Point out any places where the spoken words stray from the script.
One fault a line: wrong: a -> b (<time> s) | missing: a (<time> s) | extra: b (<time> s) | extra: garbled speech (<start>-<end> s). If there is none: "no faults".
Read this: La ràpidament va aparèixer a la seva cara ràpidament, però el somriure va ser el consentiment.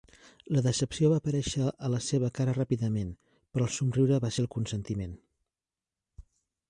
wrong: ràpidament -> decepció (0.7 s)